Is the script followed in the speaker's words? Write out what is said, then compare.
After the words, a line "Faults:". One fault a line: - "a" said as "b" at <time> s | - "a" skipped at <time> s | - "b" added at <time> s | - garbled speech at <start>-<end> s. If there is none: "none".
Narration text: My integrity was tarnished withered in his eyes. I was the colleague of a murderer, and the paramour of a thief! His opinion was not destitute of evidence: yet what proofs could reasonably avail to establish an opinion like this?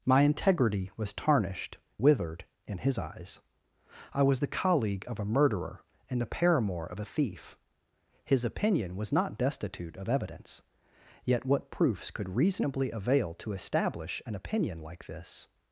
My integrity was tarnished withered in his eyes. I was the colleague of a murderer, and the paramour of a thief! His opinion was not destitute of evidence: yet what proofs could reasonably avail to establish an opinion like this?
Faults:
none